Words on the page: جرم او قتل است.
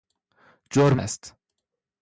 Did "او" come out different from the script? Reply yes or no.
yes